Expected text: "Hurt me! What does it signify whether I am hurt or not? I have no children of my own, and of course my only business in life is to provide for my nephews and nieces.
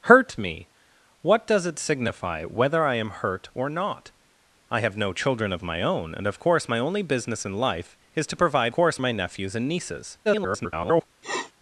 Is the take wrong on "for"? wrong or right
wrong